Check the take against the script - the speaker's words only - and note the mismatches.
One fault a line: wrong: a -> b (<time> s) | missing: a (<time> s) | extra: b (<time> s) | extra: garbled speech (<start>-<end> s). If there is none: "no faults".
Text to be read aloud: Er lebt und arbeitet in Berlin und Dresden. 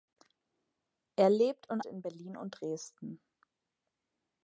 missing: arbeitet (1.8 s)